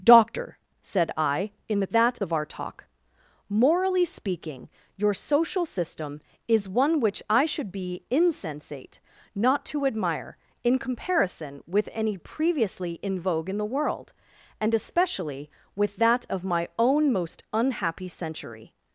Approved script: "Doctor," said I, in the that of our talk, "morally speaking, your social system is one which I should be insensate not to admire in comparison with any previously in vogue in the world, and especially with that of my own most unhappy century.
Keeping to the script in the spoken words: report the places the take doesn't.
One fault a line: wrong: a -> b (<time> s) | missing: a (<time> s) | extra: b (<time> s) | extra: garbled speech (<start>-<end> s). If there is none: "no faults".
no faults